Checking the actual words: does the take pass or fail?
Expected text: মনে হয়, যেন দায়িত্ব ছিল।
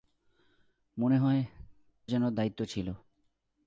pass